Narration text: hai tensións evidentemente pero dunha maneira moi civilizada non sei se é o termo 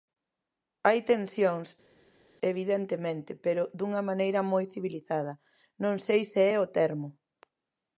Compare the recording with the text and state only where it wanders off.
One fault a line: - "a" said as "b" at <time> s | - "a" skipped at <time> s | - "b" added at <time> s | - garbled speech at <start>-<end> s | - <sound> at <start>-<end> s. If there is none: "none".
none